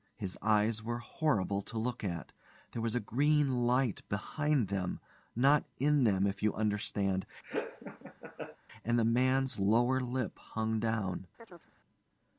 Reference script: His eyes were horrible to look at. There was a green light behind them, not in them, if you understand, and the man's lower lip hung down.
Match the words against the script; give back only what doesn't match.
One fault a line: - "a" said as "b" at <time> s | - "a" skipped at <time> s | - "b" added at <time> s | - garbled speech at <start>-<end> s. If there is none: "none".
none